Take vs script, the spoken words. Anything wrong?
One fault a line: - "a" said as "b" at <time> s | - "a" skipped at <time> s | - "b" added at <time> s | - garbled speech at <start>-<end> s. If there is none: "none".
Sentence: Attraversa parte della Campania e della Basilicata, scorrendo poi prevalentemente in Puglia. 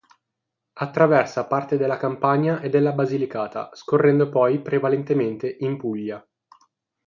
none